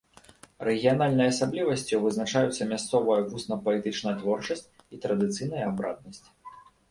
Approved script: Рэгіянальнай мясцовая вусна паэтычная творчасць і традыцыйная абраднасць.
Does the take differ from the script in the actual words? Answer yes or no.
yes